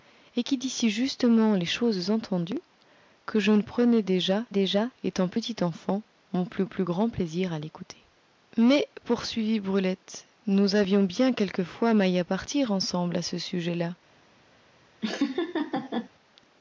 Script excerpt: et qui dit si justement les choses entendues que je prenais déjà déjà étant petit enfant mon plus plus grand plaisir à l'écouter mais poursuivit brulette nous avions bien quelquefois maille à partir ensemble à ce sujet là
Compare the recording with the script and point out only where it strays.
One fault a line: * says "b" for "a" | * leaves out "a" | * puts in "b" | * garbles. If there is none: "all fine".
all fine